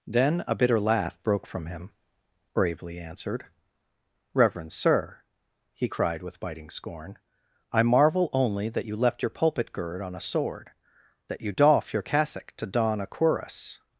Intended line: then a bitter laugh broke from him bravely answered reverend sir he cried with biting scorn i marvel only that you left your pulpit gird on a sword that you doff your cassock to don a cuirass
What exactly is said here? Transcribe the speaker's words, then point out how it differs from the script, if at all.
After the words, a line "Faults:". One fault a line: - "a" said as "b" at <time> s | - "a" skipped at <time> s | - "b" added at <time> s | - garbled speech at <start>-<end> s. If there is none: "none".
then a bitter laugh broke from him bravely answered reverend sir he cried with biting scorn i marvel only that you left your pulpit gird on a sword that you doff your cassock to don a cuirass
Faults:
none